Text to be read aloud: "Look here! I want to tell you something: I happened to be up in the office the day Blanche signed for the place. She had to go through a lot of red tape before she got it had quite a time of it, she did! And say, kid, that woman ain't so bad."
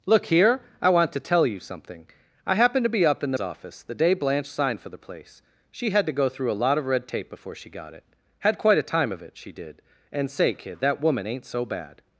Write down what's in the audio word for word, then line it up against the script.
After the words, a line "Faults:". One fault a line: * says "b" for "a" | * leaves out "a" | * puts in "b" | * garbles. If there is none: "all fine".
"Look here! I want to tell you something: I happened to be up in the office the day Blanche signed for the place. She had to go through a lot of red tape before she got it had quite a time of it, she did! And say, kid, that woman ain't so bad."
Faults:
all fine